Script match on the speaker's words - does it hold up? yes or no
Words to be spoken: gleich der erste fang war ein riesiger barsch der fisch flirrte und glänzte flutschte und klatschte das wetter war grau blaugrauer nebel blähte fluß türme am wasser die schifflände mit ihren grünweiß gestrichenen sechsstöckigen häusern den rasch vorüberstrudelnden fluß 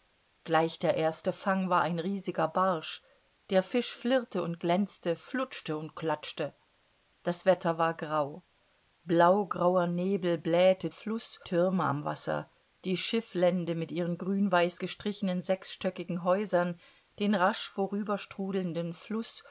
yes